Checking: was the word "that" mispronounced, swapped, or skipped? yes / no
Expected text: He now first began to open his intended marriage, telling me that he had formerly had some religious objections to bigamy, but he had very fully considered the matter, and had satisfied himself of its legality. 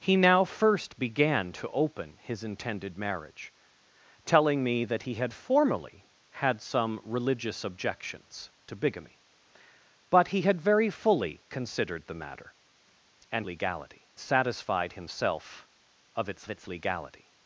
no